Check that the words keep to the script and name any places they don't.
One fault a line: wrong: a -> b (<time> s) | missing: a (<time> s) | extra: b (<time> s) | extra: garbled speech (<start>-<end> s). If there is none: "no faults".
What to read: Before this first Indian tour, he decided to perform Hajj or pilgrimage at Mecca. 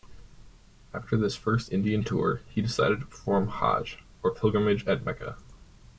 wrong: Before -> After (0.9 s)